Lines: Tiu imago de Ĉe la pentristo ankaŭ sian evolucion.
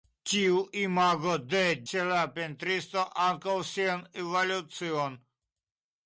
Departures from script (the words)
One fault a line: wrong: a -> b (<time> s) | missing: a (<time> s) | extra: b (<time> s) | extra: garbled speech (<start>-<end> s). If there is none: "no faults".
no faults